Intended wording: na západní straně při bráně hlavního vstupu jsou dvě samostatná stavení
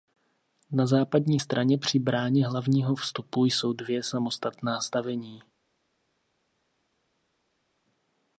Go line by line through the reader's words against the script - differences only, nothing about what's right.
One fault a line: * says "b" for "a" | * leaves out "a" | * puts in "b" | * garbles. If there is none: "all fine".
all fine